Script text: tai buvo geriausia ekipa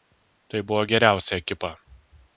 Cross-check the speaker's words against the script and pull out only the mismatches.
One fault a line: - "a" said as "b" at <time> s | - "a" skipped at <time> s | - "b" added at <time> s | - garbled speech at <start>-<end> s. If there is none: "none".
none